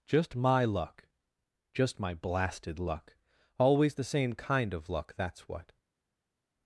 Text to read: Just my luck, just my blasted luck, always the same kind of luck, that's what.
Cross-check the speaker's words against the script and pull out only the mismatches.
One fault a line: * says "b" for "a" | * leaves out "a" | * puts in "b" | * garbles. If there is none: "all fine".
all fine